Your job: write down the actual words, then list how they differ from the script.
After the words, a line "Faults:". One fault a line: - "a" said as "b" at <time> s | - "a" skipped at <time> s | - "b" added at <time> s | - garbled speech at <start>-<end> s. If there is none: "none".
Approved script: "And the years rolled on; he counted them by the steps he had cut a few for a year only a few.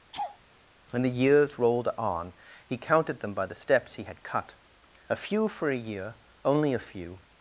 "When the years rolled on; he counted them by the steps he had cut a few for a year only a few.
Faults:
- "And" said as "When" at 0.9 s